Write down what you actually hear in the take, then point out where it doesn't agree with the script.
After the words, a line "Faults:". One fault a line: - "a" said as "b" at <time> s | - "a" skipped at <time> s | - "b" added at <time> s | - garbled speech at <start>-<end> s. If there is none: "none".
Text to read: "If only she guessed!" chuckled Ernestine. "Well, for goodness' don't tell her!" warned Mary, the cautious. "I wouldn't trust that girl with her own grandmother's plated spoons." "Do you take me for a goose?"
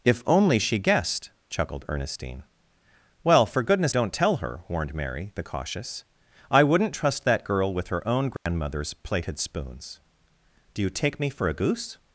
"If only she guessed!" chuckled Ernestine. "Well, for goodness' don't tell her!" warned Mary, the cautious. "I wouldn't trust that girl with her own grandmother's plated spoons." "Do you take me for a goose?"
Faults:
none